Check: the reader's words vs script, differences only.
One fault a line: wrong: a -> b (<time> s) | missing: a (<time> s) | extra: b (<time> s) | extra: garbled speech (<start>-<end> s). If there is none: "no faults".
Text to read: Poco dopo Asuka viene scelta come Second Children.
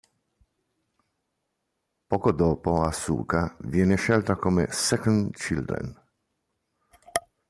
no faults